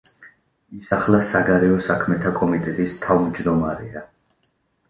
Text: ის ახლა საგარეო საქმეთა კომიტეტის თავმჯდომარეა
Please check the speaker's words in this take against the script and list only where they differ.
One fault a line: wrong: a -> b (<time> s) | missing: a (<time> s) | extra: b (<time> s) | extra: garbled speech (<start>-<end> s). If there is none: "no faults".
no faults